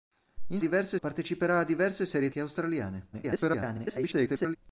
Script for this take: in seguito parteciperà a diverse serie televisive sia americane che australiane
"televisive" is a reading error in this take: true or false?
true